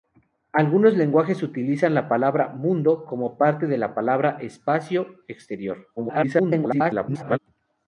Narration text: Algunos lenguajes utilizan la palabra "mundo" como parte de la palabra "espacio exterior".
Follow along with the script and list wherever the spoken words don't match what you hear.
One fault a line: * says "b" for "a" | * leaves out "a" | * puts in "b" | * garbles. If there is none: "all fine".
* garbles